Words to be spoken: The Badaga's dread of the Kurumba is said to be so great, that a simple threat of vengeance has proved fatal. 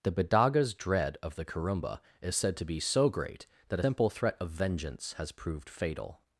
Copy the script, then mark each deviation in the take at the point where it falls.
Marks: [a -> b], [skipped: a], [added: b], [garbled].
The Badaga's dread of the Kurumba is said to be so great, that [skipped: a] simple threat of vengeance has proved fatal.